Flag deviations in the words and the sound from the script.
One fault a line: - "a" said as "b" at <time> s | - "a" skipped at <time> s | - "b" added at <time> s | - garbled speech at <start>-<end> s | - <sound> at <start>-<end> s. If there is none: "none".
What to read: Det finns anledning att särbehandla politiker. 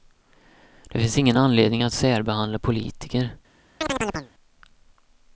- "ingen" added at 1.2 s
- chirp at 3.8-4.3 s